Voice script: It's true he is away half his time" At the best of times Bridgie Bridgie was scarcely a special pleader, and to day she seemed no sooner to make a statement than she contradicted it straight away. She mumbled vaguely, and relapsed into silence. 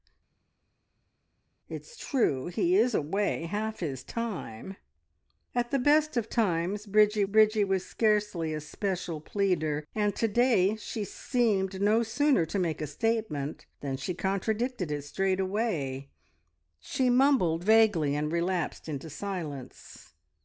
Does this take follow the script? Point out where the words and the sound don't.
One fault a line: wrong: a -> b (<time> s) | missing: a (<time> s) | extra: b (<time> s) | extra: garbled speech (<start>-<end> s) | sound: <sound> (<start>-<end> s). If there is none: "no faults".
no faults